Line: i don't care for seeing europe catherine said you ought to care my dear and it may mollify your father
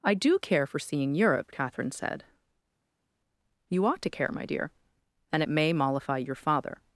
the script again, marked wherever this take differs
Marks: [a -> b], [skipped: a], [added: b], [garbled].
i [don't -> do] care for seeing europe catherine said you ought to care my dear and it may mollify your father